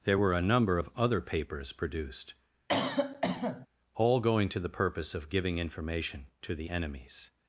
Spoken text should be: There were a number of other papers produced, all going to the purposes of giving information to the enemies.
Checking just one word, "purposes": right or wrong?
wrong